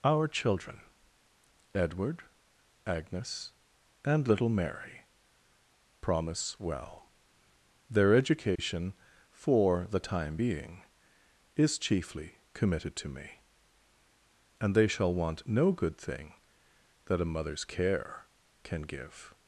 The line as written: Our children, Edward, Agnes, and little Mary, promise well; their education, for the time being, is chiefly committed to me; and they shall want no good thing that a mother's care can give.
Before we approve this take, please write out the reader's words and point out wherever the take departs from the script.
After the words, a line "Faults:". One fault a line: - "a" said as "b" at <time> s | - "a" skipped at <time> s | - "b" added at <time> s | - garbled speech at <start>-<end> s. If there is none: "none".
Our children, Edward, Agnes, and little Mary, promise well; their education, for the time being, is chiefly committed to me; and they shall want no good thing that a mother's care can give.
Faults:
none